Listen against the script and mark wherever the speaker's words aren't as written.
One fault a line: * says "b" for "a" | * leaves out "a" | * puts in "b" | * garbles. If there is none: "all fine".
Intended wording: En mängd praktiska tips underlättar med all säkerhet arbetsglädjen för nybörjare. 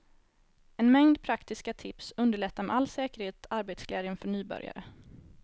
all fine